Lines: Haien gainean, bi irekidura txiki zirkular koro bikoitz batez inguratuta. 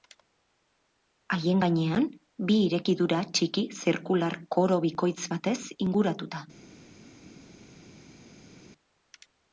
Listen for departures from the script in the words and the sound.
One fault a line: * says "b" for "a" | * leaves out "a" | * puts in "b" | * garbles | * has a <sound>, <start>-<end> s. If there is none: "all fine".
all fine